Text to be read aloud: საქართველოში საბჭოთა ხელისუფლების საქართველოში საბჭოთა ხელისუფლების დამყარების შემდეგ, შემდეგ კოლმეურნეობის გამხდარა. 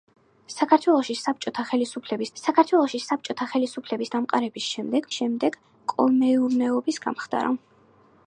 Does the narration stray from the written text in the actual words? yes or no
no